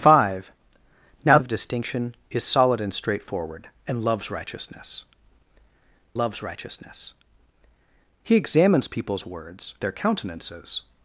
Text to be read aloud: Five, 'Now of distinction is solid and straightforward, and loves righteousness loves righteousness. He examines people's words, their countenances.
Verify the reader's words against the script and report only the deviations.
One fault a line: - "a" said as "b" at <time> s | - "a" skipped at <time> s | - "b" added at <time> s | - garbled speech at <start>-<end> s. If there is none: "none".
none